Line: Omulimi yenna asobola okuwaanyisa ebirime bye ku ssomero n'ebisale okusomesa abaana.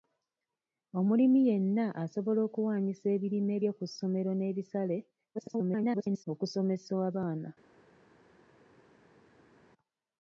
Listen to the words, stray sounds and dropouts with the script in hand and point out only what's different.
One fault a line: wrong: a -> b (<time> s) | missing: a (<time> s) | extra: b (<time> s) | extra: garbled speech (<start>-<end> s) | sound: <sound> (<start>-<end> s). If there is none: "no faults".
extra: garbled speech (5.3-6.2 s)